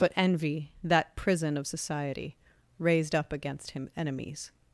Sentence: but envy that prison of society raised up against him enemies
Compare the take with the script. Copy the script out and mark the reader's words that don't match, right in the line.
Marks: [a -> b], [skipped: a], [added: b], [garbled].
but envy that prison of society raised up against him enemies